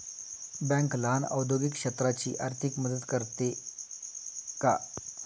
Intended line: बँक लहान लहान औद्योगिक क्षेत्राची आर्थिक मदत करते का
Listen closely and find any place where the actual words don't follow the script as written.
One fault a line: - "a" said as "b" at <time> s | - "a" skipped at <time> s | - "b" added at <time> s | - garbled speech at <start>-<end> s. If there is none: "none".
- "लहान" skipped at 1.2 s